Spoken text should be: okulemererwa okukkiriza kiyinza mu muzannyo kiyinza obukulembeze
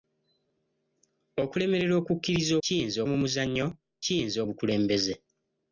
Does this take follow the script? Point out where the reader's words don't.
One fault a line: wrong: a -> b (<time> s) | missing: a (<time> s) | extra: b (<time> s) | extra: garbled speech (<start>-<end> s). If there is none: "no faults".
no faults